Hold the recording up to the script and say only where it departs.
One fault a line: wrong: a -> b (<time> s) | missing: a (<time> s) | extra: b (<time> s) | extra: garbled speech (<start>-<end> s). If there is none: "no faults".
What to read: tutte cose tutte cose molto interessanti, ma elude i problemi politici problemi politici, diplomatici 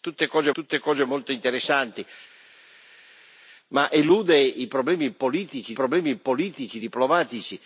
no faults